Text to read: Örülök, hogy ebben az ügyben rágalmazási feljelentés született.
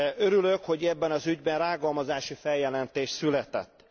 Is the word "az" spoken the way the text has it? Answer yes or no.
yes